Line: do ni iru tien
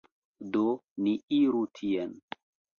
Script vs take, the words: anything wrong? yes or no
no